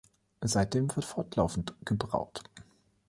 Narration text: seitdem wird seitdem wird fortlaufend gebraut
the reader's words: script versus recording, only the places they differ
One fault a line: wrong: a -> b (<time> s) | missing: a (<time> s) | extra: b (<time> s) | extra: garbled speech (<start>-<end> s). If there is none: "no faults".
missing: seitdem wird (1.1 s)